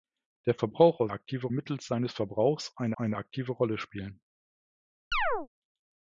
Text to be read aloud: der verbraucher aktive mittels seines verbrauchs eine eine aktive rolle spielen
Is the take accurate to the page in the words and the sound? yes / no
no